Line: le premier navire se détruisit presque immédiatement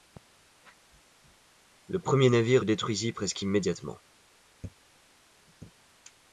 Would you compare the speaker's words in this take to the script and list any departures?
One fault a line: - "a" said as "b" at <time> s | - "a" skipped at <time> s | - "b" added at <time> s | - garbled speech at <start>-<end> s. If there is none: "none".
- "se" skipped at 2.6 s